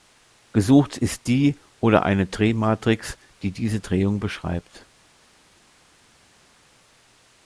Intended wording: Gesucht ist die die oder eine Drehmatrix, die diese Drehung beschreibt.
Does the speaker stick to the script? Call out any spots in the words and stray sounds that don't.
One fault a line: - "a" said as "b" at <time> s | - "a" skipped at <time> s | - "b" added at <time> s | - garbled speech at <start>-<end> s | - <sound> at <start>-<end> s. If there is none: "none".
- "die" skipped at 1.6 s